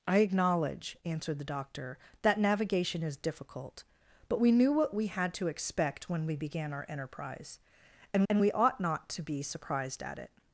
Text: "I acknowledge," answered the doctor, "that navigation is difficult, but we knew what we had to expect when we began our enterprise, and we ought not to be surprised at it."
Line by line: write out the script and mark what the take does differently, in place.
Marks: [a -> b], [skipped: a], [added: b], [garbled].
"I acknowledge," answered the doctor, "that navigation is difficult, but we knew what we had to expect when we began our enterprise, and [added: and] we ought not to be surprised at it."